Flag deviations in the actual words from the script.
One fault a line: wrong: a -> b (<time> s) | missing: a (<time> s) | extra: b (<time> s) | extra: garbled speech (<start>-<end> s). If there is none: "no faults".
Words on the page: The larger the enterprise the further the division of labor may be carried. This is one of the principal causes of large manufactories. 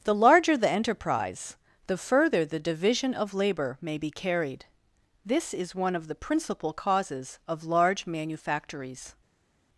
no faults